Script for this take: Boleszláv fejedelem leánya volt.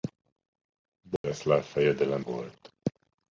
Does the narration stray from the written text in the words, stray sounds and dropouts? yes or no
yes